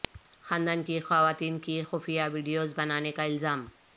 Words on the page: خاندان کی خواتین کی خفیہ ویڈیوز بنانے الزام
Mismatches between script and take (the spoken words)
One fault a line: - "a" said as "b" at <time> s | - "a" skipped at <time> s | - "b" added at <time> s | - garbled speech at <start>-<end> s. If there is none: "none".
- "کا" added at 3.1 s